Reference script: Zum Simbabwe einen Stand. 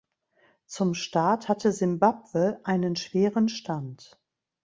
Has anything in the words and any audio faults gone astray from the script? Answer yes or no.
yes